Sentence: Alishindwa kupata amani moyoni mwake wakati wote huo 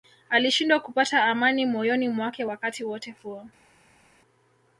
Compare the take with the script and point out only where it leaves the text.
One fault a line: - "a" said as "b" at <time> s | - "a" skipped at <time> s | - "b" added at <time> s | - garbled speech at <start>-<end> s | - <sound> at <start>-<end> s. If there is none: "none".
none